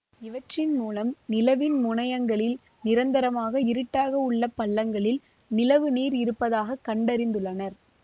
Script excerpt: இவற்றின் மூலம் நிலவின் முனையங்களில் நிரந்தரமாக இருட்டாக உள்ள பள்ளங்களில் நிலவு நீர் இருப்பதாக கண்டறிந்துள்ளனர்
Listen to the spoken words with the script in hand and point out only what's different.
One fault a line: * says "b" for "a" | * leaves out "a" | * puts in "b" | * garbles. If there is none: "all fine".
all fine